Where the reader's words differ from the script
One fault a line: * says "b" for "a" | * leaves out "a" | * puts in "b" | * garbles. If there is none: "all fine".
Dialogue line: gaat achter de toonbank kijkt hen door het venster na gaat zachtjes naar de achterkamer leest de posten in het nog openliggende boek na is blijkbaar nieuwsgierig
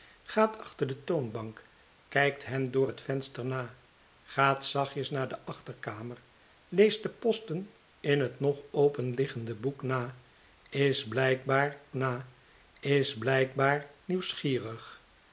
* puts in "na is blijkbaar"